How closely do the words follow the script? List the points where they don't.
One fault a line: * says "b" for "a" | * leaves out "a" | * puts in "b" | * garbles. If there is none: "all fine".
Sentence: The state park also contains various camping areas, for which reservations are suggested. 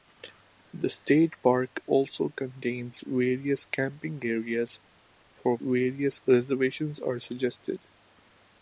* says "various" for "which"